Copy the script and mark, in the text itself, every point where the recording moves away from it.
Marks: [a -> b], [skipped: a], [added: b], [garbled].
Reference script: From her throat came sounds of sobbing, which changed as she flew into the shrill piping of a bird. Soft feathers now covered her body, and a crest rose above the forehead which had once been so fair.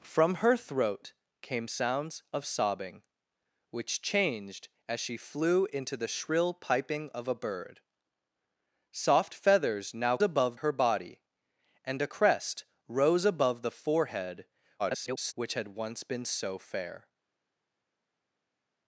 From her throat came sounds of sobbing, which changed as she flew into the shrill piping of a bird. Soft feathers now [covered -> above] her body, and a crest rose above the forehead [garbled] which had once been so fair.